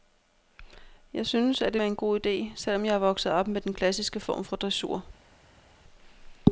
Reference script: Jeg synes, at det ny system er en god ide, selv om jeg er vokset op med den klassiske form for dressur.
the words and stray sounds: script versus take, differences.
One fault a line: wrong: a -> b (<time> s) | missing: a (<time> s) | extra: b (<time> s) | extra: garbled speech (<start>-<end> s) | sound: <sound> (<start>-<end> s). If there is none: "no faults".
missing: ny system (1.8 s)